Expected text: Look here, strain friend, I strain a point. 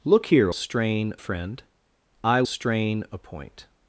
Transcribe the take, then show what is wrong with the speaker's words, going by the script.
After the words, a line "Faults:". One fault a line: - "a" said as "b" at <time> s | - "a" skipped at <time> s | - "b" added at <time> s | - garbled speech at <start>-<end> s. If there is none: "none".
Look here, strain friend, I strain a point.
Faults:
none